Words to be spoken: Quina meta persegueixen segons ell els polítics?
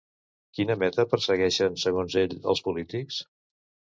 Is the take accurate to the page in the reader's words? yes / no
yes